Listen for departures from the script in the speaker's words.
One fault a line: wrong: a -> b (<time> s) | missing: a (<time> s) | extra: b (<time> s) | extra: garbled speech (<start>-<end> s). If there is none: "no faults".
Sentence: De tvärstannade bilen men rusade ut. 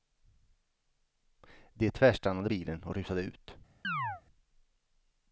wrong: men -> och (2.8 s)